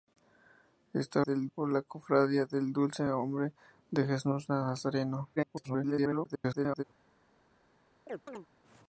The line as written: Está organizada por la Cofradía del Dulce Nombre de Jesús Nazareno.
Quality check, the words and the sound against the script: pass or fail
fail